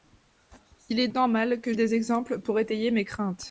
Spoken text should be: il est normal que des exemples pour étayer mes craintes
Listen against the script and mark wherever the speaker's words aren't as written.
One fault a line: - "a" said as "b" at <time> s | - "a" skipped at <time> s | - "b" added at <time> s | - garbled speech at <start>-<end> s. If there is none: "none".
none